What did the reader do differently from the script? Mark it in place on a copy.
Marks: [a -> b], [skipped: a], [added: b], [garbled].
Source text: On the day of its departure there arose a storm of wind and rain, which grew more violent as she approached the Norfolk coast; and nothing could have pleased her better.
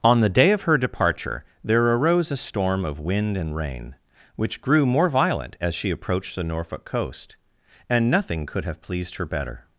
On the day of [its -> her] departure there arose a storm of wind and rain, which grew more violent as she approached the Norfolk coast; and nothing could have pleased her better.